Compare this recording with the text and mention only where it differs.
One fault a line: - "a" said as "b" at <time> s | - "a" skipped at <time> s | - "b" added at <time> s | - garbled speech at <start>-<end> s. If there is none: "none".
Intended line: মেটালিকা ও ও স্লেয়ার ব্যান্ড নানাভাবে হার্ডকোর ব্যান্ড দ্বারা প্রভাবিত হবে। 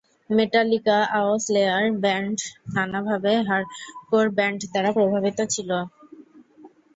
- "ও" skipped at 1.4 s
- "হবে" said as "ছিল" at 5.5 s